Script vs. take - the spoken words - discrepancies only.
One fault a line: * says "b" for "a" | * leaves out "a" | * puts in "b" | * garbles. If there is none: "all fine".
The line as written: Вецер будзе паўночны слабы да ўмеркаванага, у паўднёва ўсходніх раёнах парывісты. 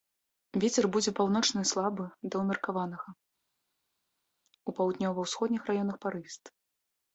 all fine